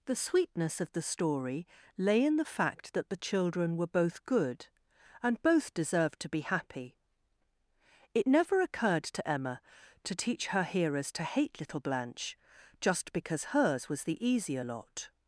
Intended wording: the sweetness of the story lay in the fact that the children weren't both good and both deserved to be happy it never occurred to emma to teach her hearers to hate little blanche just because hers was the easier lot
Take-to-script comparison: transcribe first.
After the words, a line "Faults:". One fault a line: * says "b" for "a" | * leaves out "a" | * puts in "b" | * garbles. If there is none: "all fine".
the sweetness of the story lay in the fact that the children were both good and both deserved to be happy it never occurred to emma to teach her hearers to hate little blanche just because hers was the easier lot
Faults:
* says "were" for "weren't"